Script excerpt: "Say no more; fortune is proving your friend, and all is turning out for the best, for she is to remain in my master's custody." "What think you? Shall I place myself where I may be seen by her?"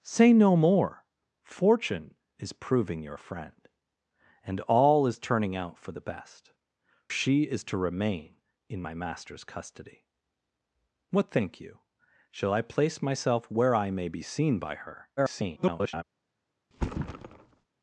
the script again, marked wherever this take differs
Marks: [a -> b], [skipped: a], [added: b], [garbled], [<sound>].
"Say no more; fortune is proving your friend, and all is turning out for the best, [skipped: for] she is to remain in my master's custody." "What think you? Shall I place myself where I may be seen by her?" [garbled] [thud]